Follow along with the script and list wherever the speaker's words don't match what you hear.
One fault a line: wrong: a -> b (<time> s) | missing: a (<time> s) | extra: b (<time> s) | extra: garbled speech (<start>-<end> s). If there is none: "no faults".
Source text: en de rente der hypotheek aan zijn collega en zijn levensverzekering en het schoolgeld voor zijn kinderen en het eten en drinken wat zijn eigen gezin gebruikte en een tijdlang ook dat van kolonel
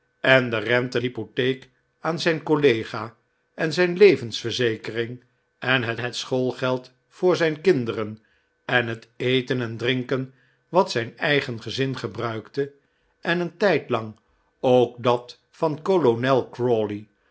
missing: der (1.0 s)
extra: het (6.0 s)